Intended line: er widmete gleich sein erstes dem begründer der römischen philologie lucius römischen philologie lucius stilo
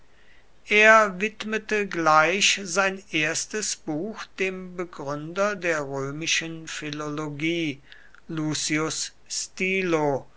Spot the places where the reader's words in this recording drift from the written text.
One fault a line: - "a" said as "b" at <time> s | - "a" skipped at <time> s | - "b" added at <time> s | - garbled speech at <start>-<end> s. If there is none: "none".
- "buch" added at 3.8 s
- "römischen philologie lucius" skipped at 9.1 s